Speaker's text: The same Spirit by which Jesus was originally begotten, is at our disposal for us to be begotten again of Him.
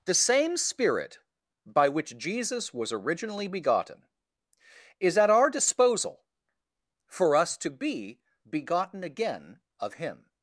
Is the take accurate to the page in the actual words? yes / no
yes